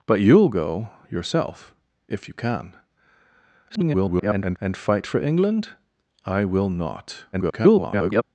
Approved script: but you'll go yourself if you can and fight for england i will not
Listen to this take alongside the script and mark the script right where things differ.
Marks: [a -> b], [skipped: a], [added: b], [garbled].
but you'll go yourself if you can [garbled] and fight for england i will not [garbled]